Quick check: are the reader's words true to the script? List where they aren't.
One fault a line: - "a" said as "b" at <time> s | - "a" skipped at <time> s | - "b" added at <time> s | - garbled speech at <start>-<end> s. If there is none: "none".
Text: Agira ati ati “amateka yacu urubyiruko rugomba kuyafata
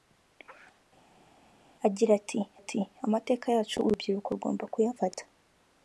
none